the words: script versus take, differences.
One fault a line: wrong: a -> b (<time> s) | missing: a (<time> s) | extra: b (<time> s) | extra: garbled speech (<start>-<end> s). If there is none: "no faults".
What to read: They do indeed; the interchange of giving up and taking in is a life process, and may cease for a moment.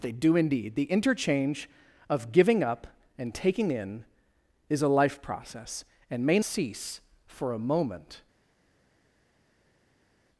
no faults